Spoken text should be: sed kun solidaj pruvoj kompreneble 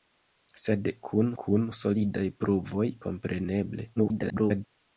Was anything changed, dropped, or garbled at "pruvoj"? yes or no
no